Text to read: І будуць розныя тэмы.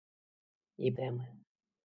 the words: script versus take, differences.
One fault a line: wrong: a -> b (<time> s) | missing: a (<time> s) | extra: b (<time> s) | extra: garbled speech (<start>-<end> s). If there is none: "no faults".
missing: будуць розныя (0.9 s)